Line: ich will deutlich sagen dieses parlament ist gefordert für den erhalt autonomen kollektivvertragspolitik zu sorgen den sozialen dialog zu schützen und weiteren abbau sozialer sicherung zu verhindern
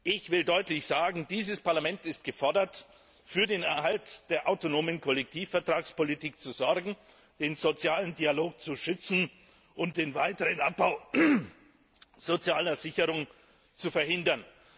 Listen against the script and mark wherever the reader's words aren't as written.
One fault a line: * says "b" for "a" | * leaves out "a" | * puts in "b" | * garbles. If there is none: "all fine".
* puts in "der"
* puts in "den"